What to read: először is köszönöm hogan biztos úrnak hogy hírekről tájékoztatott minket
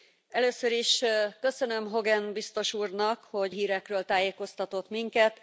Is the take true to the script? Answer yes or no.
yes